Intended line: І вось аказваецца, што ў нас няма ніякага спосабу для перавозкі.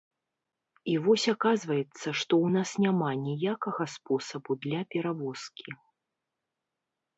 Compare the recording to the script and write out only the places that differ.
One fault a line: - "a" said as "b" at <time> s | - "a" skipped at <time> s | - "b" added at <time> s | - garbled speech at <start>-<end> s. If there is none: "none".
none